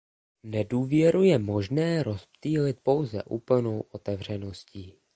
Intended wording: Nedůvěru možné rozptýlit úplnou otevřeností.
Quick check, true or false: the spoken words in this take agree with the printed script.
false